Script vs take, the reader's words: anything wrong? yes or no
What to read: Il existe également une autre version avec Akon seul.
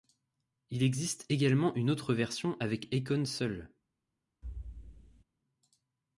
no